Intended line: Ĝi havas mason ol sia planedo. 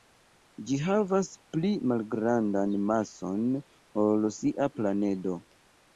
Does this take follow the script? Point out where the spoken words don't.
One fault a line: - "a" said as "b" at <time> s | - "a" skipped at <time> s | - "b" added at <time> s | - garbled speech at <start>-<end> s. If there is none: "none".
- "pli malgrandan" added at 1.6 s